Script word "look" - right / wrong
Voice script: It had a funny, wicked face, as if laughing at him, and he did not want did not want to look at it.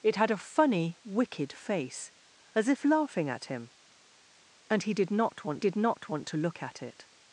right